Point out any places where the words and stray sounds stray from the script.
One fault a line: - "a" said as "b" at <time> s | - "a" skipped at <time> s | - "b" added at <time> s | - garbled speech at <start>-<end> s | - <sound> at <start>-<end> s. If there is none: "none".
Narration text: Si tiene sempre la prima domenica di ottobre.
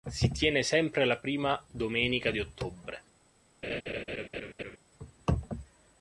- laugh at 3.6-4.8 s